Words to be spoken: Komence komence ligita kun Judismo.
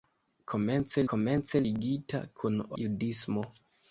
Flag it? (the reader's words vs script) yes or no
no